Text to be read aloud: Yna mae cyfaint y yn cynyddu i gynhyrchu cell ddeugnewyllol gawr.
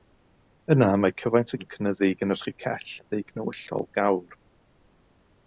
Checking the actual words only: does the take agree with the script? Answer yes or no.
yes